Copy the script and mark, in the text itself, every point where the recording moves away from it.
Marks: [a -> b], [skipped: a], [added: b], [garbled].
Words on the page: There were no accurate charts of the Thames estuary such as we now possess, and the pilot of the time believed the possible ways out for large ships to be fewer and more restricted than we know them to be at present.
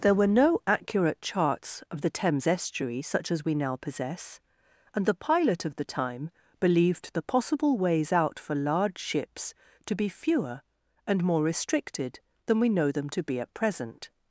There were no accurate charts of the Thames estuary such as we now possess, and the pilot of the time believed the possible ways out for large ships to be fewer and more restricted than we know them to be at present.